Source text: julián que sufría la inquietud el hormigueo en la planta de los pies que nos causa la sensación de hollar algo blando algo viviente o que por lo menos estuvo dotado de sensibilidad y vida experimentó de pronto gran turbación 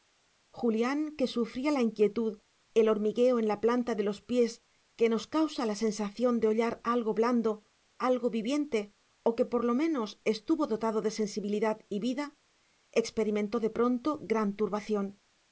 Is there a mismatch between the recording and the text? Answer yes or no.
no